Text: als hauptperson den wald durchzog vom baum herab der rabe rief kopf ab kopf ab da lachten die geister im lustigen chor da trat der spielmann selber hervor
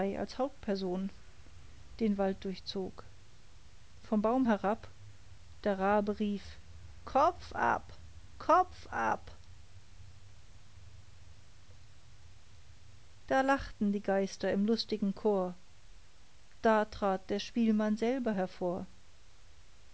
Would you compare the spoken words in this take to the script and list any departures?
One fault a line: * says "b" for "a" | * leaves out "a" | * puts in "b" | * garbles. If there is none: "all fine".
all fine